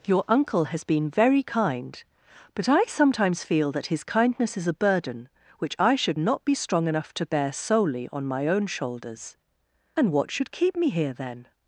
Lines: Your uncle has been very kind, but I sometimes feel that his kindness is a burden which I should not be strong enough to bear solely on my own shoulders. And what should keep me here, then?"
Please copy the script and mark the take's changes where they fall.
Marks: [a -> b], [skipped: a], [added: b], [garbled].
Your uncle has been very kind, but I sometimes feel that his kindness is a burden which I should not be strong enough to bear solely on my own shoulders. And what should keep me here, then?"